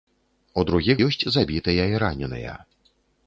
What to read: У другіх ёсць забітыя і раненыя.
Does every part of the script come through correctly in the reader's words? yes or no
yes